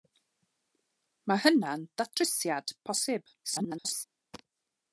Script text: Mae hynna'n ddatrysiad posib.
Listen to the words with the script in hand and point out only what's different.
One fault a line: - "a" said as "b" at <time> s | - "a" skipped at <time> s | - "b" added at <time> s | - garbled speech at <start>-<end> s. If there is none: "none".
- garbled speech at 3.4-4.0 s